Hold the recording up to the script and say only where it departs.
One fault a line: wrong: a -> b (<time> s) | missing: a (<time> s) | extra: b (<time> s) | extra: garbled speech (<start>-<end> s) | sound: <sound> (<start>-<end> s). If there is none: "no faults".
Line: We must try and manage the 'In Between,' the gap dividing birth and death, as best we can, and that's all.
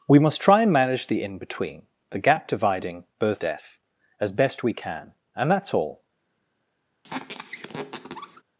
missing: and (3.4 s)
sound: squeak (7.0-8.4 s)